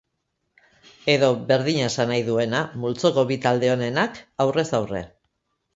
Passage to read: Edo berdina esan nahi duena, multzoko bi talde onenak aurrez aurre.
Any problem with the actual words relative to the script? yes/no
no